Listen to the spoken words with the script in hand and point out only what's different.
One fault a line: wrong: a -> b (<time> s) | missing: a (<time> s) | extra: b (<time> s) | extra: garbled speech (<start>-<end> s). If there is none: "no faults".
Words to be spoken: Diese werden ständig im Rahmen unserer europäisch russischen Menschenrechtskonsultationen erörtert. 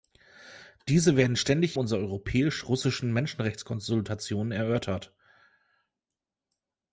missing: im Rahmen (1.8 s)